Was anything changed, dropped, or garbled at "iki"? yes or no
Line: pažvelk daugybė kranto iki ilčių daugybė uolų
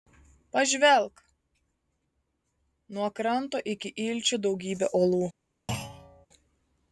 no